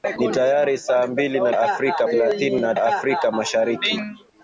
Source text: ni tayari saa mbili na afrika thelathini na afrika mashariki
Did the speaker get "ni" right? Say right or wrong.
right